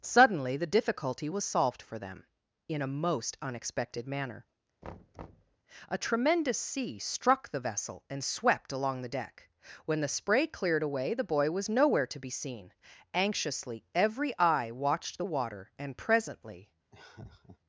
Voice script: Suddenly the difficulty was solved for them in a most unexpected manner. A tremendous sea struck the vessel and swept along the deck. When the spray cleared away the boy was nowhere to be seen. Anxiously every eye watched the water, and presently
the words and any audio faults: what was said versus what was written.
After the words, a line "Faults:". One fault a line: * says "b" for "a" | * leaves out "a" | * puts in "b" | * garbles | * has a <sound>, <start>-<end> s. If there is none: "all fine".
Suddenly the difficulty was solved for them in a most unexpected manner. A tremendous sea struck the vessel and swept along the deck. When the spray cleared away the boy was nowhere to be seen. Anxiously every eye watched the water, and presently
Faults:
* has a thud, 4.8-5.6 s
* has a laugh, 16.9-17.6 s